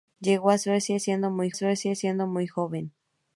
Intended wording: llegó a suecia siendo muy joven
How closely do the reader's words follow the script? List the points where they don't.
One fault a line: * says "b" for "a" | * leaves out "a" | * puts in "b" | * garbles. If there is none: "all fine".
* puts in "suecia siendo muy"